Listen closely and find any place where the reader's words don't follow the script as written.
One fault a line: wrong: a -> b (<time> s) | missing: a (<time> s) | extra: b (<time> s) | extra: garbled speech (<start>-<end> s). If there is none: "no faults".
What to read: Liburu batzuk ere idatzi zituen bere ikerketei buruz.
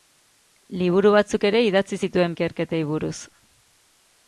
missing: bere (2.4 s)